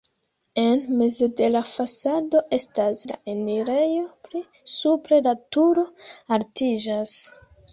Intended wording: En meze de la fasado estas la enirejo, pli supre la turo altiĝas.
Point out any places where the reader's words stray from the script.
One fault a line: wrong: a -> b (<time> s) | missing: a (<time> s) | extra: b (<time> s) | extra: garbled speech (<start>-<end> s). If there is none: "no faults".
no faults